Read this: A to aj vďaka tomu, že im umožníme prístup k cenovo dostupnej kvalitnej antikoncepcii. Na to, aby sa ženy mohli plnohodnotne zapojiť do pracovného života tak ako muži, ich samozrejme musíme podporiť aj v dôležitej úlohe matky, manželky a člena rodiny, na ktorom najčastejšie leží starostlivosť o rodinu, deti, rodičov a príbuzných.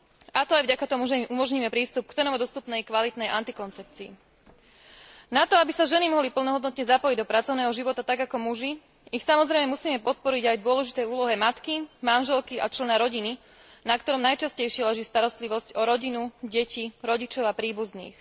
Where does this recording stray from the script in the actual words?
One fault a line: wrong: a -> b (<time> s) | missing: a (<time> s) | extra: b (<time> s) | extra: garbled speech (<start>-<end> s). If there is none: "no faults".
no faults